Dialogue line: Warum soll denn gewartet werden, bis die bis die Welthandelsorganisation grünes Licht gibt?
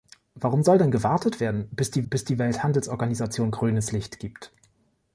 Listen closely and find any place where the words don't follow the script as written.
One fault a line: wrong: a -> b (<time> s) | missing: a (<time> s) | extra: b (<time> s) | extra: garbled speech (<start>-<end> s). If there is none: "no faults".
no faults